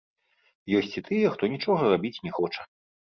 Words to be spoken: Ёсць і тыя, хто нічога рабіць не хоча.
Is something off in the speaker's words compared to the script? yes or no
no